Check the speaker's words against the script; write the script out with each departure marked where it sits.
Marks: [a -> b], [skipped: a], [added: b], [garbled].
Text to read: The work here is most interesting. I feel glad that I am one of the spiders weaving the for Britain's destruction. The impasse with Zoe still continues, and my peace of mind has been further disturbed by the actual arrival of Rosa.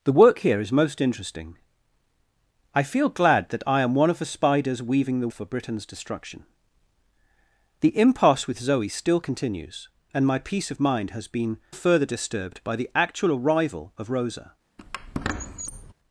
The work here is most interesting. I feel glad that I am one of the spiders weaving the for Britain's destruction. The impasse with Zoe still continues, and my peace of mind has been further disturbed by the actual arrival of Rosa.